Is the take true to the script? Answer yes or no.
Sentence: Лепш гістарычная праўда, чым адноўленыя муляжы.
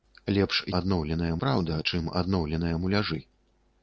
no